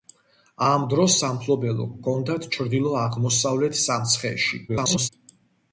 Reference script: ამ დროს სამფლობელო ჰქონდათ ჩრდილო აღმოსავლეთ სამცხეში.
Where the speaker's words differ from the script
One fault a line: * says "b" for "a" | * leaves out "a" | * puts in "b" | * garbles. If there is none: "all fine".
* garbles